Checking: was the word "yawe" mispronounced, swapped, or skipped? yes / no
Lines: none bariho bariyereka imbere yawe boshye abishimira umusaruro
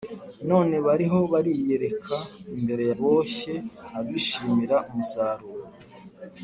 yes